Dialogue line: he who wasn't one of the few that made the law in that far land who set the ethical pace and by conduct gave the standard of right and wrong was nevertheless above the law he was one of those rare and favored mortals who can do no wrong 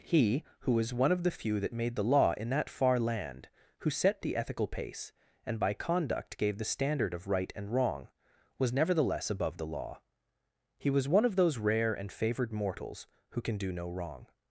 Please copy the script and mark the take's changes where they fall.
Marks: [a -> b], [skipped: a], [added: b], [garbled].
he who [wasn't -> was] one of the few that made the law in that far land who set the ethical pace and by conduct gave the standard of right and wrong was nevertheless above the law he was one of those rare and favored mortals who can do no wrong